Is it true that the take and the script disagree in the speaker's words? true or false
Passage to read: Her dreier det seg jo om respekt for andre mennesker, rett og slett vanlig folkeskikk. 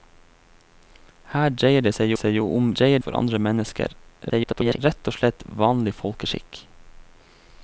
true